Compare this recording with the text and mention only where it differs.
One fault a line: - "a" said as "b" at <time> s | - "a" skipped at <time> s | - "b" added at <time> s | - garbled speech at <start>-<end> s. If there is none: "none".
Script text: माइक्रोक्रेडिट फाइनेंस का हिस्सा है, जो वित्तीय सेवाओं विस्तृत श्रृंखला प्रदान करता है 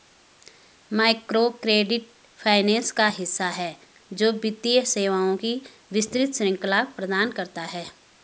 - "की" added at 5.3 s